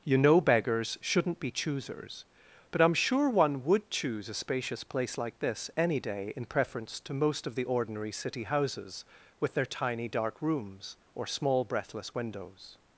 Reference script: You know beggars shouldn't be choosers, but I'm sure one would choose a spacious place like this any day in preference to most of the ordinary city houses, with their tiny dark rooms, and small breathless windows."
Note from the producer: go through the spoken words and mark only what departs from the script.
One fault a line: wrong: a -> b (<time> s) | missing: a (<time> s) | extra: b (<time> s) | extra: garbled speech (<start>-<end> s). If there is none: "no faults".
wrong: and -> or (11.1 s)